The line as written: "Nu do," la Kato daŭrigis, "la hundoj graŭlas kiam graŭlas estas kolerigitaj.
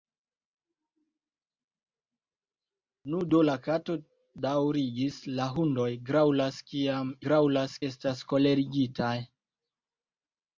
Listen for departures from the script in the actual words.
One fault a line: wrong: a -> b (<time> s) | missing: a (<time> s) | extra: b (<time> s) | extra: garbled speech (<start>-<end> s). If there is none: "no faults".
no faults